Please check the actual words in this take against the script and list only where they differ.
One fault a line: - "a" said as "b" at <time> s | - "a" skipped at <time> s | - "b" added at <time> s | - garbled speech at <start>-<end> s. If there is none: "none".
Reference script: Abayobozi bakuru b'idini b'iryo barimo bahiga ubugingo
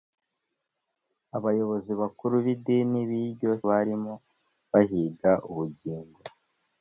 none